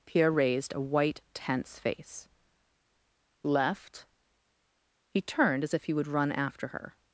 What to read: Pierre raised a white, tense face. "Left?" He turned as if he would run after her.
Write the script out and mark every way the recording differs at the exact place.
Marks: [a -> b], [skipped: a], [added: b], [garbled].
Pierre raised a white, tense face. "Left?" He turned as if he would run after her.